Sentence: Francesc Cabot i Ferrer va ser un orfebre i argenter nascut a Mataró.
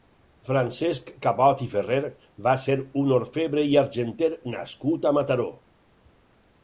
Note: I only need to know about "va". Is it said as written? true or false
true